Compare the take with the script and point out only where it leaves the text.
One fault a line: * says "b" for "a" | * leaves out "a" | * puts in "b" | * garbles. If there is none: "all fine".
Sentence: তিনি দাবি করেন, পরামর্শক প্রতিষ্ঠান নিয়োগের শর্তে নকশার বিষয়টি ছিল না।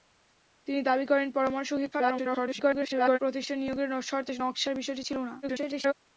* garbles
* garbles